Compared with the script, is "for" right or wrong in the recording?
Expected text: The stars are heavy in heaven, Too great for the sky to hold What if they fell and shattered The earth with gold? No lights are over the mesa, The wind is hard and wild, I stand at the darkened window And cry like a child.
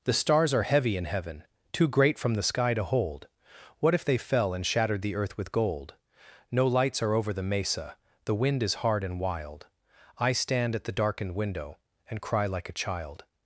wrong